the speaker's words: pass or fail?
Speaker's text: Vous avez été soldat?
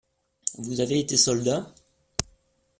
pass